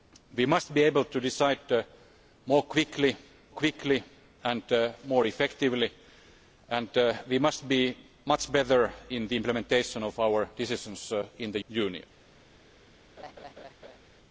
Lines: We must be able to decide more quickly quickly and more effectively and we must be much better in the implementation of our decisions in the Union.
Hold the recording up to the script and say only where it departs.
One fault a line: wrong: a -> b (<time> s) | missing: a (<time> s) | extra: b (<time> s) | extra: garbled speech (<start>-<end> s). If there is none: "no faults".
no faults